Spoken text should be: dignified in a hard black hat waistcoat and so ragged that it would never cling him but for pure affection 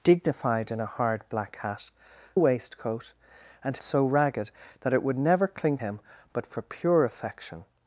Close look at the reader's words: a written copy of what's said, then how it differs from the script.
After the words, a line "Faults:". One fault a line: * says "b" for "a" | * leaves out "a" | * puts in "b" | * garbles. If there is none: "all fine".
dignified in a hard black hat waistcoat and so ragged that it would never cling him but for pure affection
Faults:
all fine